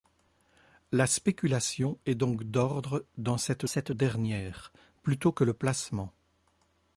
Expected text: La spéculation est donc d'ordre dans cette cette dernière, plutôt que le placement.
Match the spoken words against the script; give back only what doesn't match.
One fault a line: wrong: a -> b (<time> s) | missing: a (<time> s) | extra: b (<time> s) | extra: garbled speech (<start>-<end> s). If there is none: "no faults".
no faults